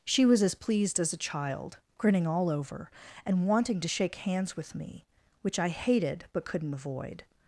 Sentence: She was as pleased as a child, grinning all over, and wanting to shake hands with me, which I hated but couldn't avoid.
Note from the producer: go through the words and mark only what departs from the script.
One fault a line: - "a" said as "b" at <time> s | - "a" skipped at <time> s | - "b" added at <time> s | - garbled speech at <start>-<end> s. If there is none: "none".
none